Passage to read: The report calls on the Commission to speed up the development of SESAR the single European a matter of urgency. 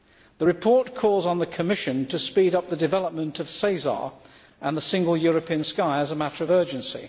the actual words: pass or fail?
fail